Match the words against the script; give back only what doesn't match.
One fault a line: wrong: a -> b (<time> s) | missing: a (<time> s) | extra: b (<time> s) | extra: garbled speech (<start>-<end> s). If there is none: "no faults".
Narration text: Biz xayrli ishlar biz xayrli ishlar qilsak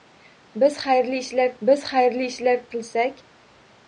no faults